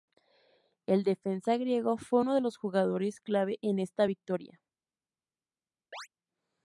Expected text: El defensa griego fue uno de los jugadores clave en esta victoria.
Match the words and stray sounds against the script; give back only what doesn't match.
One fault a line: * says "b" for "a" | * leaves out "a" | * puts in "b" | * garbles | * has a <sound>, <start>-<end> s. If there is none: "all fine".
* has a chirp, 5.9-6.1 s